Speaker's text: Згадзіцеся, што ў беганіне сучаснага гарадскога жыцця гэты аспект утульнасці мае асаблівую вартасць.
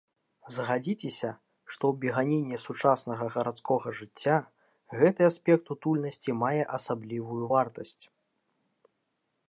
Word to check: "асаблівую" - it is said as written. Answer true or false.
true